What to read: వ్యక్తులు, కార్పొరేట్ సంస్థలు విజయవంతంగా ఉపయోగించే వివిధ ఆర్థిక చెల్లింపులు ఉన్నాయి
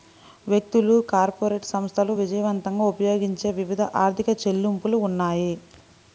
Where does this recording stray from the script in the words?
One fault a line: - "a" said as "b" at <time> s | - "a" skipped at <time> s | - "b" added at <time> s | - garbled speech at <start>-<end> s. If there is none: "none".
none